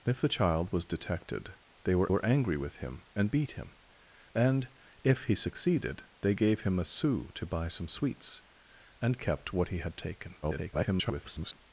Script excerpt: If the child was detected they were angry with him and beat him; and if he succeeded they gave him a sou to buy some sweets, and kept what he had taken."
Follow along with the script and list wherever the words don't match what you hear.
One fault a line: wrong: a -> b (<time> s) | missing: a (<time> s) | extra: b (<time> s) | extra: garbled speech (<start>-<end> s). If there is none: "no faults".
extra: were (2.1 s)
extra: garbled speech (10.4-11.6 s)